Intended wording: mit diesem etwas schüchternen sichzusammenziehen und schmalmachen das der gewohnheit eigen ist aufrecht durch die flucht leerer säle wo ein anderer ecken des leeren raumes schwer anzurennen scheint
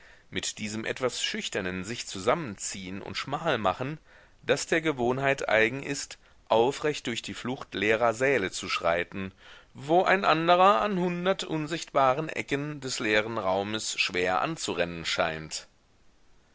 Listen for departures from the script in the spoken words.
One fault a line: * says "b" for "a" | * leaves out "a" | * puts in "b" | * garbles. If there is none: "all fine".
* puts in "zu schreiten"
* puts in "an hundert unsichtbaren"